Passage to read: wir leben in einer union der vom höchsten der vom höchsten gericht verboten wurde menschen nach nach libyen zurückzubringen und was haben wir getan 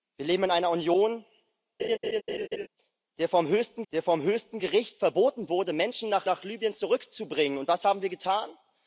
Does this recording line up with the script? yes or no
yes